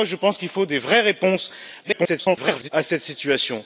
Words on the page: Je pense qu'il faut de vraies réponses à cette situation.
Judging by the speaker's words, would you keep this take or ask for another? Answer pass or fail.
fail